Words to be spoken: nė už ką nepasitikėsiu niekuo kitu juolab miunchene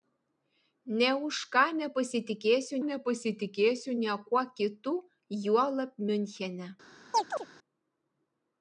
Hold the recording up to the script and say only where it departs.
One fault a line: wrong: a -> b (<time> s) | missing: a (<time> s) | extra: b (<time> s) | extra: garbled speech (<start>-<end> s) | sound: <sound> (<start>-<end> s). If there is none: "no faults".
extra: nepasitikėsiu (2.9 s)
sound: chirp (7.1-7.5 s)